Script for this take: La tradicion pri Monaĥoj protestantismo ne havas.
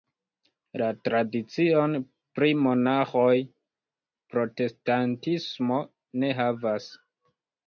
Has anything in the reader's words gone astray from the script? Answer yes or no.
no